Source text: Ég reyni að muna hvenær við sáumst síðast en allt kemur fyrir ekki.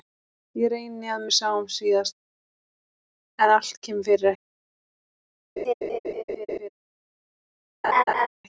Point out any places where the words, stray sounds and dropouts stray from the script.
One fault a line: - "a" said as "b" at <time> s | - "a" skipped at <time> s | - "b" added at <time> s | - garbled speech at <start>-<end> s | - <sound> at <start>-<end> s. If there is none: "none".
- "muna hvenær" skipped at 1.2 s
- laugh at 5.6-6.7 s
- laugh at 7.8-8.3 s